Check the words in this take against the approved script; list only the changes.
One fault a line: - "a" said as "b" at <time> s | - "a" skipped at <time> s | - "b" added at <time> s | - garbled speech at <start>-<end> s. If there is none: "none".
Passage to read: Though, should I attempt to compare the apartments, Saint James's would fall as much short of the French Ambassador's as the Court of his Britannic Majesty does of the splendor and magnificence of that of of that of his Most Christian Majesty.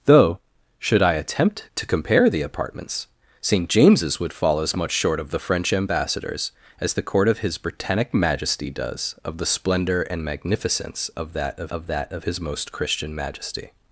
none